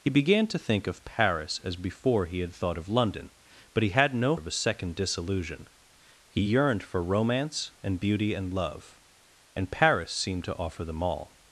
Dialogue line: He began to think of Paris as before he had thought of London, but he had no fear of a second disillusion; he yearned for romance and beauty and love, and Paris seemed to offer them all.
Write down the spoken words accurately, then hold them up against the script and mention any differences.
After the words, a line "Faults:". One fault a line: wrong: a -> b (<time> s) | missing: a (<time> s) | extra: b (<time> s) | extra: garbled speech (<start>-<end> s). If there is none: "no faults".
He began to think of Paris as before he had thought of London, but he had no of a second disillusion; he yearned for romance and beauty and love, and Paris seemed to offer them all.
Faults:
missing: fear (4.3 s)